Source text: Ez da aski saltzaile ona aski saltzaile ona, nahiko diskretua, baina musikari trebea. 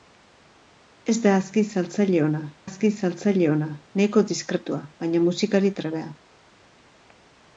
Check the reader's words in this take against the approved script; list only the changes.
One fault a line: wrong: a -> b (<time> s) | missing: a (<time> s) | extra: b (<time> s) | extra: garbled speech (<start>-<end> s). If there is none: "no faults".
no faults